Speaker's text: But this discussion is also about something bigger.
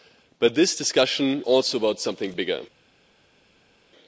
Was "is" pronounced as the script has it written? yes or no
no